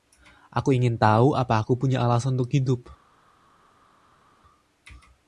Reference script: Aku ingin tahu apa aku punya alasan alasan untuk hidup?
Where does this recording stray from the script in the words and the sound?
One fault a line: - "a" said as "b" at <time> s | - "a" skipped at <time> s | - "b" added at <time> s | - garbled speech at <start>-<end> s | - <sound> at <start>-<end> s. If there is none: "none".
- "alasan" skipped at 2.4 s